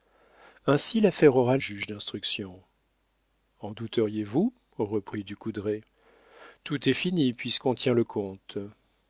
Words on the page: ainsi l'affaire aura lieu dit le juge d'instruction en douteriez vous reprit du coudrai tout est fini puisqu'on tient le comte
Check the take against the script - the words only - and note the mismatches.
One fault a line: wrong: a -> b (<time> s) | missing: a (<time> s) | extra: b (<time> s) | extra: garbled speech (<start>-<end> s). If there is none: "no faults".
missing: lieu dit le (1.6 s)